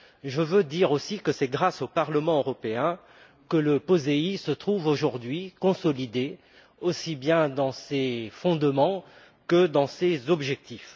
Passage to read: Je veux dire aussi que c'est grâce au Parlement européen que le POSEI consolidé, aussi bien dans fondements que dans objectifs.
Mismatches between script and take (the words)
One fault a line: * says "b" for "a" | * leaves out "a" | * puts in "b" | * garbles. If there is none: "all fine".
* puts in "se trouve aujourd'hui"
* puts in "ses"
* puts in "ses"